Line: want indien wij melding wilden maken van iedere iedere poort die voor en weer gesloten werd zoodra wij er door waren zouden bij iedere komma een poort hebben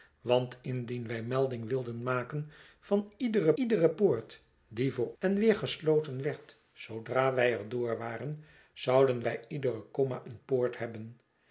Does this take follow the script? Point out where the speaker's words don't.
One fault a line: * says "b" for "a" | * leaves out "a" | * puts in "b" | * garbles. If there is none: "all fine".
all fine